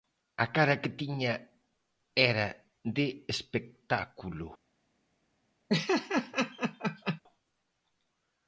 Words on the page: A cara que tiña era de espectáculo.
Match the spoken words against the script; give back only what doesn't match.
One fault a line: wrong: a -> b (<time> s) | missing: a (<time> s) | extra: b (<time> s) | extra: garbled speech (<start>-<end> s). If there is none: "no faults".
no faults